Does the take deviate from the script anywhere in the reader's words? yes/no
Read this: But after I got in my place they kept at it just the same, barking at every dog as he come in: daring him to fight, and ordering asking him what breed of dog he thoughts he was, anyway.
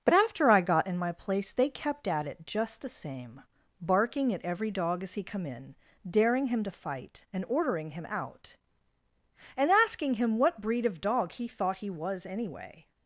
yes